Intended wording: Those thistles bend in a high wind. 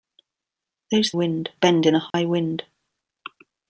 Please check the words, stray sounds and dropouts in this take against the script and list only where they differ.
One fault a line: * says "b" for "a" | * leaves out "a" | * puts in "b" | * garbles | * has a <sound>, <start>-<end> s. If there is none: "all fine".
* says "wind" for "thistles"
* has a dropout, 2.1-2.1 s